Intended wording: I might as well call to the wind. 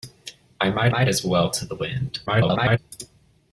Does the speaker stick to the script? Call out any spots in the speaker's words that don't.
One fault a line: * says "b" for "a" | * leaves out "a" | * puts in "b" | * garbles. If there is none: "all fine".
* puts in "might"
* leaves out "call"
* garbles